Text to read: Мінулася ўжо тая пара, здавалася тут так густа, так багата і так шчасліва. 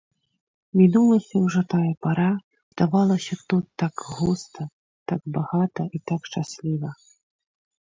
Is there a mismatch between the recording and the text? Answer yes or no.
no